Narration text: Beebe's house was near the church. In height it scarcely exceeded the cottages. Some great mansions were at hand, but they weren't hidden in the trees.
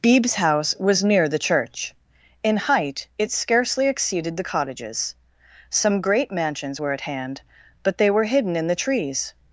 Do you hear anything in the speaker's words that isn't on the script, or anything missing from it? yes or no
yes